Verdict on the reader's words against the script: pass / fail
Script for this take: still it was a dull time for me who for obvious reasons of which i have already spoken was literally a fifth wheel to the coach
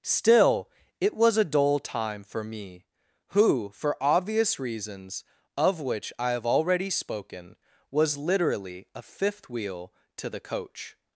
pass